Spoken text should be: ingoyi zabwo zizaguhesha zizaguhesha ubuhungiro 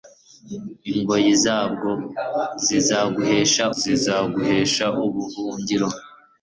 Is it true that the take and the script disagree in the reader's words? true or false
false